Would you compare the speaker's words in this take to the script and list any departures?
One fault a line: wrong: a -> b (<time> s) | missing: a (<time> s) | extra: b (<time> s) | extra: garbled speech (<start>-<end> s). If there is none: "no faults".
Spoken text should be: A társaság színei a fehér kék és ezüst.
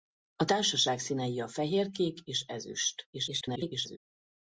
extra: garbled speech (3.1-4.0 s)